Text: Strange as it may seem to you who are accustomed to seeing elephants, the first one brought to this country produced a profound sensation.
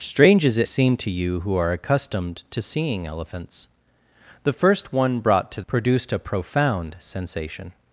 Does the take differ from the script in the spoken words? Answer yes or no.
yes